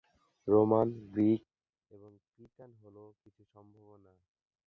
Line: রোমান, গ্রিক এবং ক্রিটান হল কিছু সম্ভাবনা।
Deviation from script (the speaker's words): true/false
false